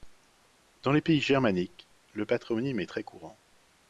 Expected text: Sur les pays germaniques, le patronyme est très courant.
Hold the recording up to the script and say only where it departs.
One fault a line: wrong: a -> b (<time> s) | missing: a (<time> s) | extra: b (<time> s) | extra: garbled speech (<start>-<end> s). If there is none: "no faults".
wrong: Sur -> Dans (0.8 s)